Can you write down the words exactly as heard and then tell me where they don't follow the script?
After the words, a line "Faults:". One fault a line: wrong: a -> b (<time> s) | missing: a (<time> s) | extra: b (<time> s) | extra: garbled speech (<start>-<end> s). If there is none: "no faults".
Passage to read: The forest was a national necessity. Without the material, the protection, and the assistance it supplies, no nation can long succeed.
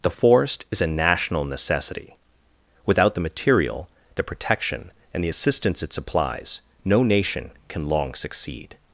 The forest is a national necessity. Without the material, the protection, and the assistance it supplies, no nation can long succeed.
Faults:
wrong: was -> is (0.7 s)